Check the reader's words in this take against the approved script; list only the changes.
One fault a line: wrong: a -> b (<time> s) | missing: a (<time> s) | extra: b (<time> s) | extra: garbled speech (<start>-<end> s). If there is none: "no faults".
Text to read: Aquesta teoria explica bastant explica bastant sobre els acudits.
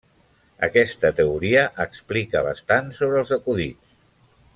missing: explica bastant (2.9 s)